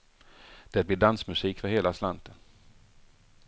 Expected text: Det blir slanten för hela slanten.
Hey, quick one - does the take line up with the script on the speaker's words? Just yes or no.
no